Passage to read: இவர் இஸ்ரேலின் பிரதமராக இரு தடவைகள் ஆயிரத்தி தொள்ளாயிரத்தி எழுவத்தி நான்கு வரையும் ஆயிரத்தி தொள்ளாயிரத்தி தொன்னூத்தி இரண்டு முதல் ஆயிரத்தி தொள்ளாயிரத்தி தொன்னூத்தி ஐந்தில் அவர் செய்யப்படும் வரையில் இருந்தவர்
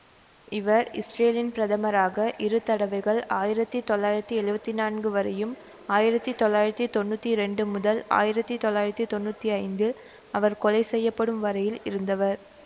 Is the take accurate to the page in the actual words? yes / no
no